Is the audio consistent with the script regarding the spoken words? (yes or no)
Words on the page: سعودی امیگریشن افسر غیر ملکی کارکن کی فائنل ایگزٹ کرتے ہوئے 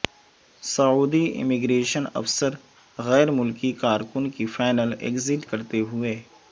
yes